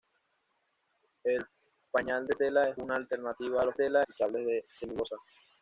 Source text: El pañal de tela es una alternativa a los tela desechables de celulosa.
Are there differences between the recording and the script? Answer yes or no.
no